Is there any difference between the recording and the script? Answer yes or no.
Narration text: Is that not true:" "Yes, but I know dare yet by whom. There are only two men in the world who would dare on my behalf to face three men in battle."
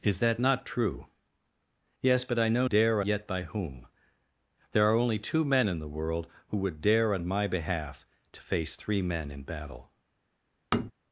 no